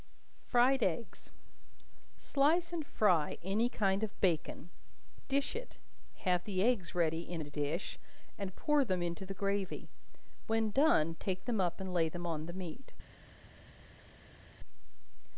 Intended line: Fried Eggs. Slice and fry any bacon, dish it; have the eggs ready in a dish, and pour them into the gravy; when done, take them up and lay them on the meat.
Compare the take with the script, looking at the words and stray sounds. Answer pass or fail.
fail